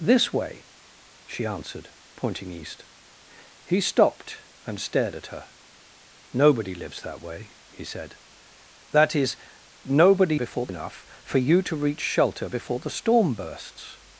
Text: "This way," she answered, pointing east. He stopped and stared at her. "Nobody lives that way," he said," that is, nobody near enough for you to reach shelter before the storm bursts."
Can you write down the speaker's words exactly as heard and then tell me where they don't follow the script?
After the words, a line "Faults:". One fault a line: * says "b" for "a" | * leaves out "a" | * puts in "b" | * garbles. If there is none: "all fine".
"This way," she answered, pointing east. He stopped and stared at her. "Nobody lives that way," he said," that is, nobody before enough for you to reach shelter before the storm bursts."
Faults:
* says "before" for "near"